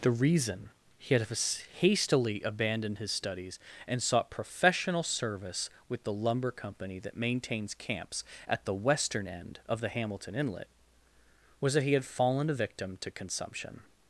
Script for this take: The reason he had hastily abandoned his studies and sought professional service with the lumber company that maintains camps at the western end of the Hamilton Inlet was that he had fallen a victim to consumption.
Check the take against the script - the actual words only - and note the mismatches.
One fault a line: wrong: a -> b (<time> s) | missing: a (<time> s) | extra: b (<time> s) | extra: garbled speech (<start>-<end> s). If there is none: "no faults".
no faults